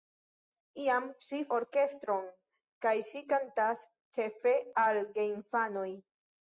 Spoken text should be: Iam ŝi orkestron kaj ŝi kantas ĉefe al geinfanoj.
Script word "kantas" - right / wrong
right